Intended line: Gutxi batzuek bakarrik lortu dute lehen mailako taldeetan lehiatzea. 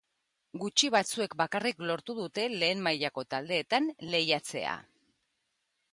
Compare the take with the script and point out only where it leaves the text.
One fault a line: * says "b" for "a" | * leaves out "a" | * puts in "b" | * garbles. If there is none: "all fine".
all fine